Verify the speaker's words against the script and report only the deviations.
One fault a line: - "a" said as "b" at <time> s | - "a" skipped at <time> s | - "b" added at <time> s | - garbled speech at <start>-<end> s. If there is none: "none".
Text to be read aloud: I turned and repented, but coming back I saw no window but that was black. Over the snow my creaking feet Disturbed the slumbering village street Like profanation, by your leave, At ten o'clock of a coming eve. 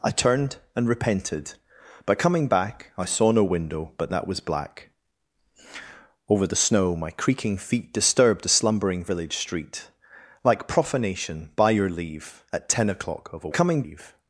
none